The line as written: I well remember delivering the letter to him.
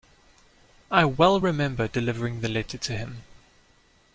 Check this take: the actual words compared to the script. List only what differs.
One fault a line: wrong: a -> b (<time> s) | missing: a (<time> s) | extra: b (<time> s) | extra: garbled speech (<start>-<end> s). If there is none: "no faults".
no faults